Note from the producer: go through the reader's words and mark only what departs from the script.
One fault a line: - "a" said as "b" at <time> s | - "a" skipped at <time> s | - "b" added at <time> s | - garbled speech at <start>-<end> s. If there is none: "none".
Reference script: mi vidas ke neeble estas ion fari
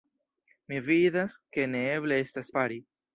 - "ion" skipped at 2.5 s